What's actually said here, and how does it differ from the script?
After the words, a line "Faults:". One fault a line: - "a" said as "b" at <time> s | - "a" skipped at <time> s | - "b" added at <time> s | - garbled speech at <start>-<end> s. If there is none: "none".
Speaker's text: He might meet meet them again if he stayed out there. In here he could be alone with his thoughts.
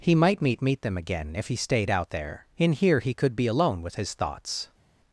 He might meet meet them again if he stayed out there. In here he could be alone with his thoughts.
Faults:
none